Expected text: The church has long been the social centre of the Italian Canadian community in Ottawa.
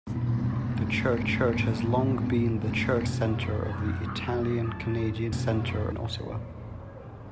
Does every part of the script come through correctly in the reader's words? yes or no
no